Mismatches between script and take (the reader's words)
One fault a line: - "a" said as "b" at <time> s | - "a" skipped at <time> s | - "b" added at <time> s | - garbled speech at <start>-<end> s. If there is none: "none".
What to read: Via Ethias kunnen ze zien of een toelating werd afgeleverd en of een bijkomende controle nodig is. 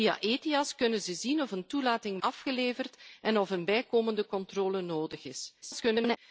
- "werd" skipped at 2.2 s
- garbled speech at 5.6-6.2 s